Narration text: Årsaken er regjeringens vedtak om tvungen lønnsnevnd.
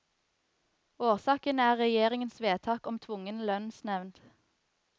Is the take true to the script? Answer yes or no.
yes